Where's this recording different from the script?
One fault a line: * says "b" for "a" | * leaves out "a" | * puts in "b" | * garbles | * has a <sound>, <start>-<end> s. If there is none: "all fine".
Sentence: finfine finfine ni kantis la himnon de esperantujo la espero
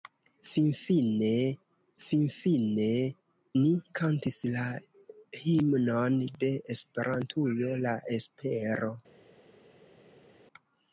all fine